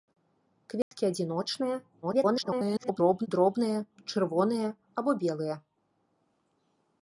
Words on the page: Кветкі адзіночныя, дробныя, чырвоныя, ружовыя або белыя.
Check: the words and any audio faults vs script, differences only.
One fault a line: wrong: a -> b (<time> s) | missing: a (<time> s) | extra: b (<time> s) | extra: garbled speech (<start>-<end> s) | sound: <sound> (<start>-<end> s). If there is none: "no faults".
sound: dropout (0.8-0.9 s)
extra: garbled speech (2.0-3.3 s)
missing: ружовыя (4.7 s)